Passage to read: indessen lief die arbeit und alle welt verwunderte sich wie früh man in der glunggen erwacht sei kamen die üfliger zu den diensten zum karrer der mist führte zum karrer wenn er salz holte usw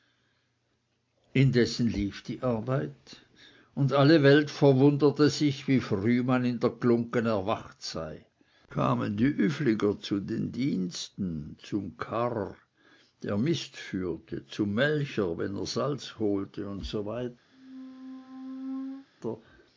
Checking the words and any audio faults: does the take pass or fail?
fail